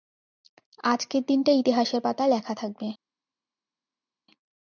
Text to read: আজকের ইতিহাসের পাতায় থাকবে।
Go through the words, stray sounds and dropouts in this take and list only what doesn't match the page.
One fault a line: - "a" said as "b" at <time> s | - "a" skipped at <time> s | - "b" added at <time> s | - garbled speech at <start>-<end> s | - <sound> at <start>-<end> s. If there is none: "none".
- "দিনটা" added at 1.2 s
- "লেখা" added at 2.3 s